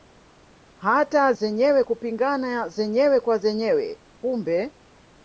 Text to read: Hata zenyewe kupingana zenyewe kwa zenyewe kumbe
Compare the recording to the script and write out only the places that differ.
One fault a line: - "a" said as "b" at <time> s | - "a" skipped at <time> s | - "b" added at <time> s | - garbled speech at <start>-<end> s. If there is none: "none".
none